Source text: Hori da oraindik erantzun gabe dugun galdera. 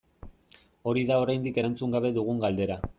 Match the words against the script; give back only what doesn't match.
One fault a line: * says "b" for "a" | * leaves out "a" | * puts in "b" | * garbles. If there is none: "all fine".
all fine